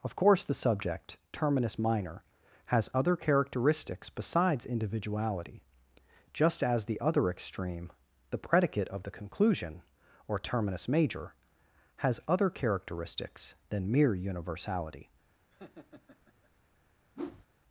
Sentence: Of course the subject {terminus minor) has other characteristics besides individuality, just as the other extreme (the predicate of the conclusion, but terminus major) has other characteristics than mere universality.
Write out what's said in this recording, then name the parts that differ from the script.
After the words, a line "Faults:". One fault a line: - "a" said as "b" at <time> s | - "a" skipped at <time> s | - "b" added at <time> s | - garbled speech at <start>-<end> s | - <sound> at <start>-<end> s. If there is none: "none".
Of course the subject {terminus minor) has other characteristics besides individuality, just as the other extreme (the predicate of the conclusion, or terminus major) has other characteristics than mere universality.
Faults:
- "but" said as "or" at 10.3 s
- laugh at 15.5-16.5 s
- whoosh at 17.1-17.5 s